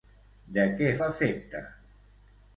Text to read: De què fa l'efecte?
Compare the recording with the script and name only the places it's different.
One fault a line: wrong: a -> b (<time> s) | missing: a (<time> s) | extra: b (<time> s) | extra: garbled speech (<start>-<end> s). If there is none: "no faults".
missing: fa (0.9 s)